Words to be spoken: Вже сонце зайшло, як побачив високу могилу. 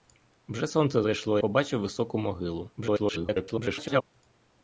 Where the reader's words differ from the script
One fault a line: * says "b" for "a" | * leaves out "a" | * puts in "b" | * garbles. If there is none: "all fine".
* leaves out "як"
* garbles